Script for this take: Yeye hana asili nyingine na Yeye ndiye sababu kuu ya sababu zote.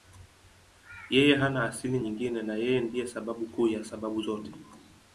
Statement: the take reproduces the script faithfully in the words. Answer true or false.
true